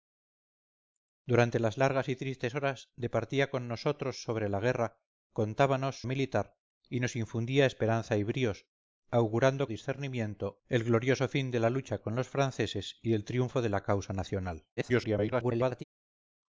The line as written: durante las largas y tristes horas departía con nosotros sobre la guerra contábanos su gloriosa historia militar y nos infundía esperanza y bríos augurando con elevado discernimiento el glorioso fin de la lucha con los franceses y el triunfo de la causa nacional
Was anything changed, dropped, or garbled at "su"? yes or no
yes